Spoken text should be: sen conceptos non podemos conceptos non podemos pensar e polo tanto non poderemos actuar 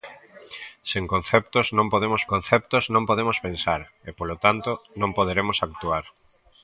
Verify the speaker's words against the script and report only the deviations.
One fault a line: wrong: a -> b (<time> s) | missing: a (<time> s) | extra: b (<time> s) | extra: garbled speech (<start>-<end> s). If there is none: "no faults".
no faults